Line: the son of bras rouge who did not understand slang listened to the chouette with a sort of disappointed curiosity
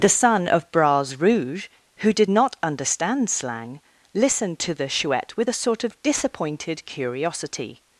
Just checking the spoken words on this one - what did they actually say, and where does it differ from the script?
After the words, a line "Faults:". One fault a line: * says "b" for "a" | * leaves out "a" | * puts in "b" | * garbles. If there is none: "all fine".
the son of bras rouge who did not understand slang listened to the chouette with a sort of disappointed curiosity
Faults:
all fine